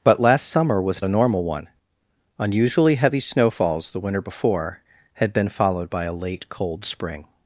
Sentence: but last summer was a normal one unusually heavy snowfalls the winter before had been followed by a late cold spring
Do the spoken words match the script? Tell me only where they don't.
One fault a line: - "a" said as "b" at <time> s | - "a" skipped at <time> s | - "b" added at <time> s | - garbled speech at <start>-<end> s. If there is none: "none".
none